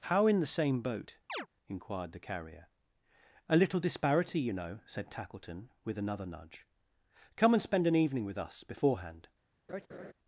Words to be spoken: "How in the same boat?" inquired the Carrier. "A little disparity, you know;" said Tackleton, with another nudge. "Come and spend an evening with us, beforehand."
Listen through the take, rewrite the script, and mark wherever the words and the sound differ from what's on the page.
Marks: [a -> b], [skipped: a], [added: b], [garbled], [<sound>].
"How in the same boat?" [chirp] inquired the Carrier. "A little disparity, you know;" said Tackleton, with another nudge. "Come and spend an evening with us, beforehand." [laugh]